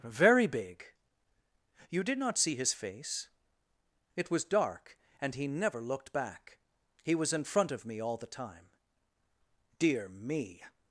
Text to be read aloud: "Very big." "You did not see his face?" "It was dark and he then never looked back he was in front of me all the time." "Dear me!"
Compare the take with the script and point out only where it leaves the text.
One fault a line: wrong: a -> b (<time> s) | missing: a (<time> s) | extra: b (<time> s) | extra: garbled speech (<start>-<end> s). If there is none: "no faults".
missing: then (5.5 s)